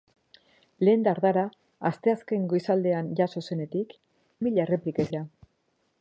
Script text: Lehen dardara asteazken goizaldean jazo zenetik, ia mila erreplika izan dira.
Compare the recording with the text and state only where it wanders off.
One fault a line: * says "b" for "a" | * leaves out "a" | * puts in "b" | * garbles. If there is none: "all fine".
* leaves out "ia"
* leaves out "izan"